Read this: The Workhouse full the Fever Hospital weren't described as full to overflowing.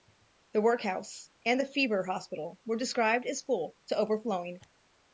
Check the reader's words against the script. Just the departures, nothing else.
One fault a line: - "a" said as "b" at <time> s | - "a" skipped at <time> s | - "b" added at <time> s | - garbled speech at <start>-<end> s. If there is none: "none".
- "full" said as "and" at 1.4 s
- "weren't" said as "were" at 2.6 s